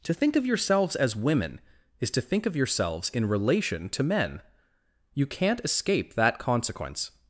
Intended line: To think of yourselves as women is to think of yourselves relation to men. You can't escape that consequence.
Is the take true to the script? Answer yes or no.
no